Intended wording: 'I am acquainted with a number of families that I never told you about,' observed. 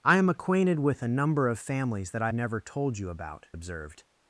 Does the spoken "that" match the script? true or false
true